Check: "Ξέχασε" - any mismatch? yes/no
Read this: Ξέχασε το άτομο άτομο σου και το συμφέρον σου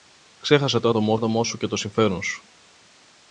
no